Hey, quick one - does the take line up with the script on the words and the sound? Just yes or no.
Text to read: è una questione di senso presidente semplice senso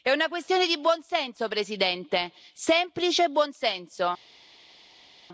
no